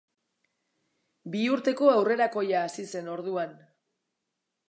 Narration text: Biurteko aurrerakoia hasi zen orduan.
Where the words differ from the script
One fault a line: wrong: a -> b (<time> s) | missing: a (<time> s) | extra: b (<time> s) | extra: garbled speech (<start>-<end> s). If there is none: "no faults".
no faults